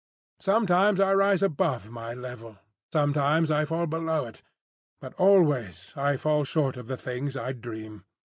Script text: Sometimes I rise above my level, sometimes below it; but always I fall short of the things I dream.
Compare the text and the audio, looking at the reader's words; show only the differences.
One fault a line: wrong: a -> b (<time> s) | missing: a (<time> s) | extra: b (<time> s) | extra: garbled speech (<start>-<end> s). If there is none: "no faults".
extra: I fall (3.5 s)